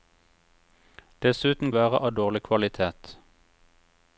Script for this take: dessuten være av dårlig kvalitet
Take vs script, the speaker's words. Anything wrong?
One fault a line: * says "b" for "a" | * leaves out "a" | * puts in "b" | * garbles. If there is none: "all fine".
all fine